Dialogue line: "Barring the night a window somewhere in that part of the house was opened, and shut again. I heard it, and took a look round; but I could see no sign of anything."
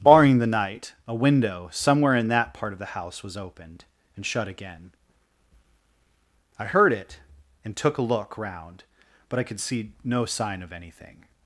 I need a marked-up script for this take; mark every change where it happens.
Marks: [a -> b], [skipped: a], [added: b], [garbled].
"Barring the night a window somewhere in that part of the house was opened, and shut again. I heard it, and took a look round; but I could see no sign of anything."